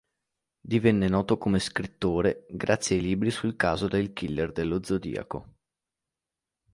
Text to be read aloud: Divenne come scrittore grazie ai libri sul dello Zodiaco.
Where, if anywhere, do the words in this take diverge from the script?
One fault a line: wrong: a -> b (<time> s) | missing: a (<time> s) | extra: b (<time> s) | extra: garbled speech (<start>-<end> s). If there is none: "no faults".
extra: noto (1.1 s)
extra: caso del killer (3.6 s)